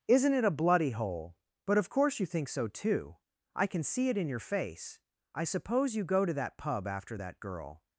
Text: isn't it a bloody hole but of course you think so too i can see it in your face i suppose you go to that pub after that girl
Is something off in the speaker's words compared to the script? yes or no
no